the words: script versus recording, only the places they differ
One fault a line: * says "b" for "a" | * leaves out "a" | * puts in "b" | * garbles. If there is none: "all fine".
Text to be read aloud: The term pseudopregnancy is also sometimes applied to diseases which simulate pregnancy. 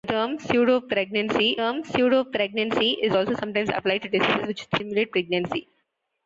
* puts in "term pseudopregnancy"